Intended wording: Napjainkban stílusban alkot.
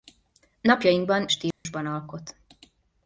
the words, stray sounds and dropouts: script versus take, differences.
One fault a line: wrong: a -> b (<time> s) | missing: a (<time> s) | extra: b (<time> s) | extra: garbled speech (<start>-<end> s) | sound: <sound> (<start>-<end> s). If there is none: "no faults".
sound: dropout (1.5-1.6 s)